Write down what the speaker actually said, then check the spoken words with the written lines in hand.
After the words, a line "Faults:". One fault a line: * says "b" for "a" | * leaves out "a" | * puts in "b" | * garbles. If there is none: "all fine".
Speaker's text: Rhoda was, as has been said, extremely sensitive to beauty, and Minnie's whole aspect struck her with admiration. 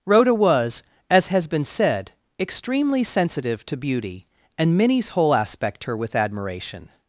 Rhoda was, as has been said, extremely sensitive to beauty, and Minnie's whole aspect her with admiration.
Faults:
* leaves out "struck"